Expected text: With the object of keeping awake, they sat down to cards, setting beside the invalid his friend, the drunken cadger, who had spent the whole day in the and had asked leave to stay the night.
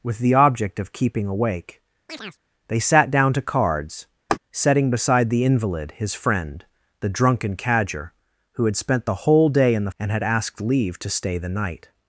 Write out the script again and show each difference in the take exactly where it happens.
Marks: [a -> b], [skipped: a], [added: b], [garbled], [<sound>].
With the object of keeping awake, [chirp] they sat down to cards, [laugh] setting beside the invalid his friend, the drunken cadger, who had spent the whole day in the and had asked leave to stay the night.